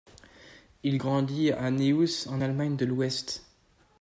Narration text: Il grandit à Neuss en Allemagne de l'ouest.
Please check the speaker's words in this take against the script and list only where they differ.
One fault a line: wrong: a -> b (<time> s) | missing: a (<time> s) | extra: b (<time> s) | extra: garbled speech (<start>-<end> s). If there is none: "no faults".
no faults